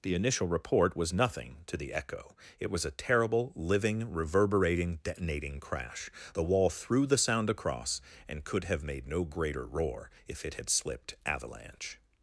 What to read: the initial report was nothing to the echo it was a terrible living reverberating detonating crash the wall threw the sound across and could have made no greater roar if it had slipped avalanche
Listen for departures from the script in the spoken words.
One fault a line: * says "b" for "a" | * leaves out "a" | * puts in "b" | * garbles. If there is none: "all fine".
all fine